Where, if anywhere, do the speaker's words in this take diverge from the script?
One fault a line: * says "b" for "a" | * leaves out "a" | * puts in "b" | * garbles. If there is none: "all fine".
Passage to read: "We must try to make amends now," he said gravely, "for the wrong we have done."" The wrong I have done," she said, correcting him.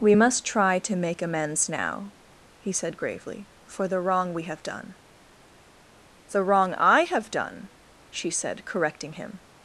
all fine